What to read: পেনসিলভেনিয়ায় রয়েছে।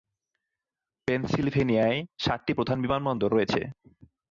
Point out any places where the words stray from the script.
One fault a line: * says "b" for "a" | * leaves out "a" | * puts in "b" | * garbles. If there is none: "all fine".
* puts in "সাতটি প্রধান বিমানবন্দর"